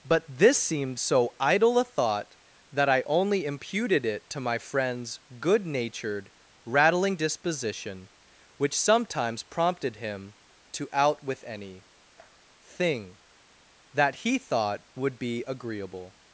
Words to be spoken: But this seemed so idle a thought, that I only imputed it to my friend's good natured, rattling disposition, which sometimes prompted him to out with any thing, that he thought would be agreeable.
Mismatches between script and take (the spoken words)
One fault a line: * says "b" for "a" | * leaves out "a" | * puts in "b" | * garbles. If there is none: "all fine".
all fine